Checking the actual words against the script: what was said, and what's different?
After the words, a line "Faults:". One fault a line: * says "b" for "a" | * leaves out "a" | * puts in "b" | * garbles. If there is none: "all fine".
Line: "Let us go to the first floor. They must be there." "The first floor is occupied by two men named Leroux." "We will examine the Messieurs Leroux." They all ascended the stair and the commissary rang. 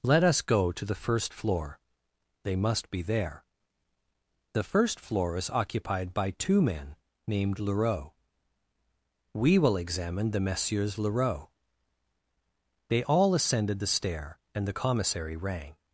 "Let us go to the first floor. They must be there." "The first floor is occupied by two men named Leroux." "We will examine the Messieurs Leroux." They all ascended the stair and the commissary rang.
Faults:
all fine